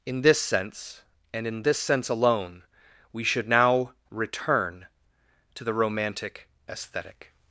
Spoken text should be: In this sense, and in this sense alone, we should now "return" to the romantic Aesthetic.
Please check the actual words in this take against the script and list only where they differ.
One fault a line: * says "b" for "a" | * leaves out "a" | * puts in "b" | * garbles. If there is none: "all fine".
all fine